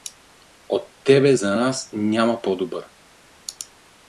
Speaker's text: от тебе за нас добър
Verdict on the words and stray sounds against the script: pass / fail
fail